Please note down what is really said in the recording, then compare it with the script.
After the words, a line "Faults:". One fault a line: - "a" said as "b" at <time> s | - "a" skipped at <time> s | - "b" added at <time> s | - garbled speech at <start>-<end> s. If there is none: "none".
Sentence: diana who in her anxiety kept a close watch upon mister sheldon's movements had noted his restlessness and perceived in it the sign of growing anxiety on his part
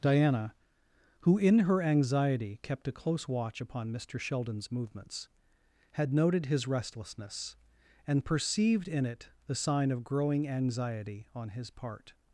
diana who in her anxiety kept a close watch upon mister sheldon's movements had noted his restlessness and perceived in it the sign of growing anxiety on his part
Faults:
none